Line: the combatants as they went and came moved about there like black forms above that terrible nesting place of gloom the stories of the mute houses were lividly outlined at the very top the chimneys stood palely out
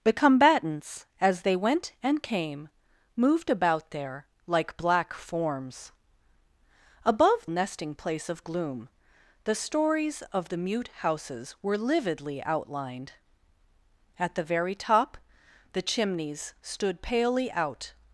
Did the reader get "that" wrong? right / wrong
wrong